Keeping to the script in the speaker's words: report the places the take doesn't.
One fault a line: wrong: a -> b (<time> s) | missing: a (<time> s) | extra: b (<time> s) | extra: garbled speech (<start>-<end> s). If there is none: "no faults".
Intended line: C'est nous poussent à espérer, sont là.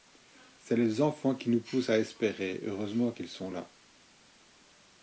extra: les enfants qui (0.8 s)
extra: heureusement qu'ils (2.6 s)